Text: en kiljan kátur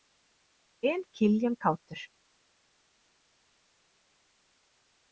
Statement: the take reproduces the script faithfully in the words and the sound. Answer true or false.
true